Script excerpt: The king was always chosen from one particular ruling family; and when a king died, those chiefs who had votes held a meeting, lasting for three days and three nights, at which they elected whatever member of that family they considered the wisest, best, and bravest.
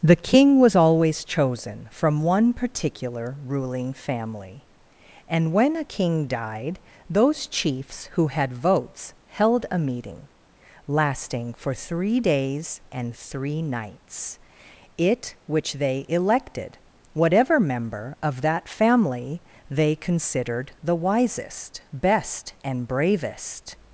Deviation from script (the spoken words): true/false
true